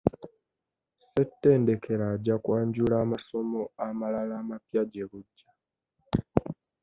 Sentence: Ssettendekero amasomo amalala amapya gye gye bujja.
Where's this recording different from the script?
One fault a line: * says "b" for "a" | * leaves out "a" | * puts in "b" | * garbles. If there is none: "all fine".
* puts in "ajja kwanjula"
* leaves out "gye"